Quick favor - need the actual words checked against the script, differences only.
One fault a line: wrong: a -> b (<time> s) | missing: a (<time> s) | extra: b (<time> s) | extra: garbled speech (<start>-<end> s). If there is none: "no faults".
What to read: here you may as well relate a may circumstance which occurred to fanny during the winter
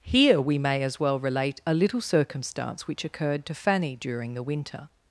wrong: you -> we (0.4 s)
wrong: may -> little (1.7 s)